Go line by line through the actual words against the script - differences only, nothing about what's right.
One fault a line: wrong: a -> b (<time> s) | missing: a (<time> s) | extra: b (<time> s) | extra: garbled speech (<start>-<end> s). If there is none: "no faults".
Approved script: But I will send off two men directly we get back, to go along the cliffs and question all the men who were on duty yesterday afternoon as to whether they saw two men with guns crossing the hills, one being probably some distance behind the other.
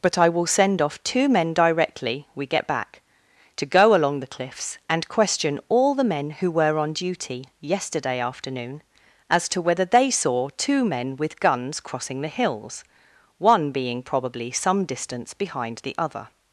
no faults